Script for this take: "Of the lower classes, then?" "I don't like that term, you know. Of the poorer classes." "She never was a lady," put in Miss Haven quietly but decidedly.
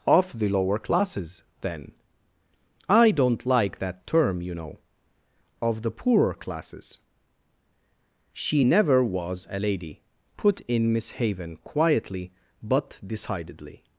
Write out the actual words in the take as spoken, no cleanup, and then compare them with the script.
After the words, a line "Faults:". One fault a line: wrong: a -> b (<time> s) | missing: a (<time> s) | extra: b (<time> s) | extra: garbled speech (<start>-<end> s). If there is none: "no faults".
"Of the lower classes, then?" "I don't like that term, you know. Of the poorer classes." "She never was a lady," put in Miss Haven quietly but decidedly.
Faults:
no faults